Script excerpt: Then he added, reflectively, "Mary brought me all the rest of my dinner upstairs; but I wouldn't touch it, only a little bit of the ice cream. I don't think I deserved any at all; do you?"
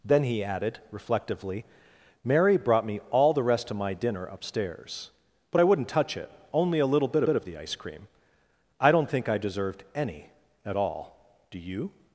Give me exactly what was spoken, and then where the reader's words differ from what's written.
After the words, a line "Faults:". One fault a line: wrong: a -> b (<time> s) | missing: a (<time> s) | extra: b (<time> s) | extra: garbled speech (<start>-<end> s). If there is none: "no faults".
Then he added, reflectively, "Mary brought me all the rest of my dinner upstairs; but I wouldn't touch it, only a little bit bit of the ice cream. I don't think I deserved any at all; do you?"
Faults:
extra: bit (7.2 s)